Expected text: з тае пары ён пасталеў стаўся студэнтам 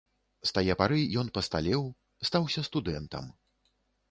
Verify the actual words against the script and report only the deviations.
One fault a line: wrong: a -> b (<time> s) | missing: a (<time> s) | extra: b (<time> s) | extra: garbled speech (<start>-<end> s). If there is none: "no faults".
no faults